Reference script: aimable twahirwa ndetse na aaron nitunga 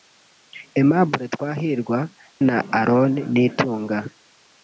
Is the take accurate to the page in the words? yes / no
no